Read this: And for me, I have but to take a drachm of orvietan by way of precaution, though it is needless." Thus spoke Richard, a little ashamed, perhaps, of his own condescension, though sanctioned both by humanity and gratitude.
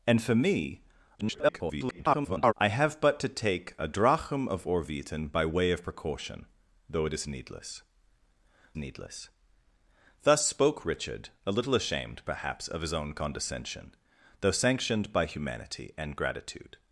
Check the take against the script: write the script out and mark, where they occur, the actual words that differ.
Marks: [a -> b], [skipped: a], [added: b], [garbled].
And for me, [garbled] I have but to take a drachm of orvietan by way of precaution, though it is needless." [added: needless] Thus spoke Richard, a little ashamed, perhaps, of his own condescension, though sanctioned [skipped: both] by humanity and gratitude.